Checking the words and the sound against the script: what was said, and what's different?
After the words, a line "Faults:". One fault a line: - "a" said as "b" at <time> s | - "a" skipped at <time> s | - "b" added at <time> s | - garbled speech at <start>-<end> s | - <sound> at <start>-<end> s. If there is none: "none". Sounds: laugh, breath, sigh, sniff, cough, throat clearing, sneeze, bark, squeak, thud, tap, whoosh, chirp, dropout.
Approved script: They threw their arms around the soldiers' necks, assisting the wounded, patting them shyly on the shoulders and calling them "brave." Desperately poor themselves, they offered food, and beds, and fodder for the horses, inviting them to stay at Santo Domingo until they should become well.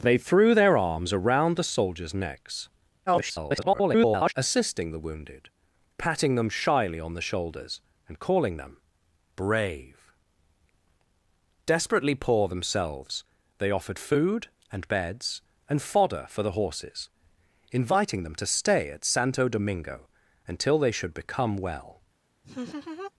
They threw their arms around the soldiers' necks, [garbled] assisting the wounded, patting them shyly on the shoulders and calling them "brave." Desperately poor themselves, they offered food, and beds, and fodder for the horses, inviting them to stay at Santo Domingo until they should become well.
Faults:
- garbled speech at 3.1-4.3 s
- laugh at 22.4-23.1 s